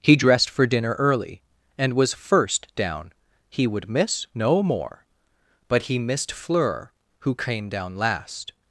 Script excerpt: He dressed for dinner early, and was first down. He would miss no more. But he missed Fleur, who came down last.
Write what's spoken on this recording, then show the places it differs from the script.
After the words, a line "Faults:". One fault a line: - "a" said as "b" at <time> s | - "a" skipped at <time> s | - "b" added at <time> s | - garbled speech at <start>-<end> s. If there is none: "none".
He dressed for dinner early, and was first down. He would miss no more. But he missed Fleur, who came down last.
Faults:
none